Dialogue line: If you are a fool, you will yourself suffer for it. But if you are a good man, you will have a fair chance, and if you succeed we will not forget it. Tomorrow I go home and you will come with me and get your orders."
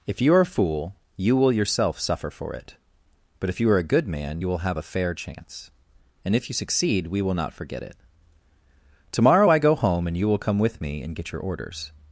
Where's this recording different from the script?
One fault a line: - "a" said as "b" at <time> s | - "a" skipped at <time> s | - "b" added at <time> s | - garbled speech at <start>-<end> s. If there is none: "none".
none